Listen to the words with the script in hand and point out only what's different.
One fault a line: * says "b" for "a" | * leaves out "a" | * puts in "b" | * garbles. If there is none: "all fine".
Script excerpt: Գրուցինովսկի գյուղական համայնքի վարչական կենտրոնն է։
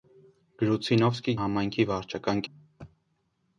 * leaves out "գյուղական"
* leaves out "կենտրոնն"